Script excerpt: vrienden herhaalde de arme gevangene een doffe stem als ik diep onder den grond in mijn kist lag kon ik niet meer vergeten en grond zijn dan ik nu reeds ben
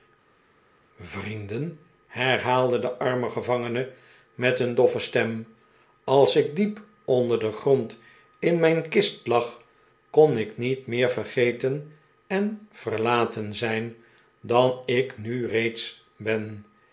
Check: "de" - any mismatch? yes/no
no